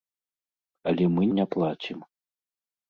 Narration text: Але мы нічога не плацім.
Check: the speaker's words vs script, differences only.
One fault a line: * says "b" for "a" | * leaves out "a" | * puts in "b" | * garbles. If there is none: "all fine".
* leaves out "нічога"